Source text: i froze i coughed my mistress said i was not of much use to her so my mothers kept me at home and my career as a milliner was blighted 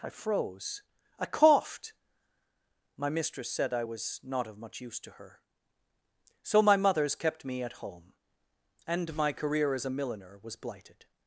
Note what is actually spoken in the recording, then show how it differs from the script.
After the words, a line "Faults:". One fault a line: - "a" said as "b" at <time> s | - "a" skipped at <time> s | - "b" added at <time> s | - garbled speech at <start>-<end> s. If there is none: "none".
i froze i coughed my mistress said i was not of much use to her so my mothers kept me at home and my career as a milliner was blighted
Faults:
none